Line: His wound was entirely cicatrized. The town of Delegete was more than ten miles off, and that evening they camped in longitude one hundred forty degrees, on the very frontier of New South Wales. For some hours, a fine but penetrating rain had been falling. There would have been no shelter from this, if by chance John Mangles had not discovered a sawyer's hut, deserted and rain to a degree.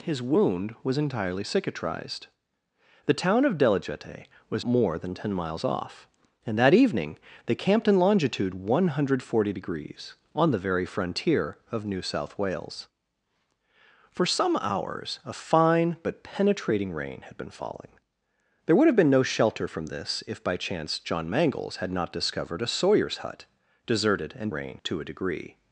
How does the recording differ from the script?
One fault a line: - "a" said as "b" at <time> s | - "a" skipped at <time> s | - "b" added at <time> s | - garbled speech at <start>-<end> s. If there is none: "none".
none